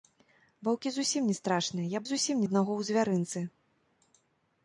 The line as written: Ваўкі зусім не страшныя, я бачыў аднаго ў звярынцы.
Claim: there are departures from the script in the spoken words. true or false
true